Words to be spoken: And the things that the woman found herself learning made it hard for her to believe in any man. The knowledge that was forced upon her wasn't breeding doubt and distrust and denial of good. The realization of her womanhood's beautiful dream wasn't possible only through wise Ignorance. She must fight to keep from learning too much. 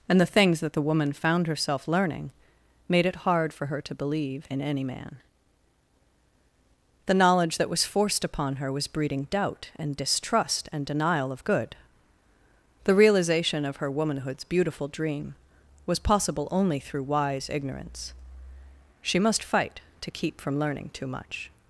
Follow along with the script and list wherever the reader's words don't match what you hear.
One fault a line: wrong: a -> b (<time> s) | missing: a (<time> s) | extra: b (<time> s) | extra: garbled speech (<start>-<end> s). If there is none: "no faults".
wrong: wasn't -> was (8.7 s)
wrong: wasn't -> was (15.9 s)